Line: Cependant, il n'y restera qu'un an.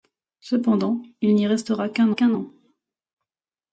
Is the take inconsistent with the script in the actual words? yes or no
yes